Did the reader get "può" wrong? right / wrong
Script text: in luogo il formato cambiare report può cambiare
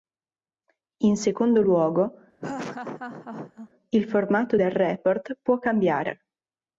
right